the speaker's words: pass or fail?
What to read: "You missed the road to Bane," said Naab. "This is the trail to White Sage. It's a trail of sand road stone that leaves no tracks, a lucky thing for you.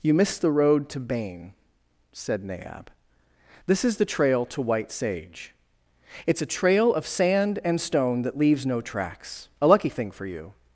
fail